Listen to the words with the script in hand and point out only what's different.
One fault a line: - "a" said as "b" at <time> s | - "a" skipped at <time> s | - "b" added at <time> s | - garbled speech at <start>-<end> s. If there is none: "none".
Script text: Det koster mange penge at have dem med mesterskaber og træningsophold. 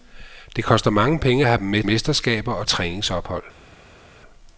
none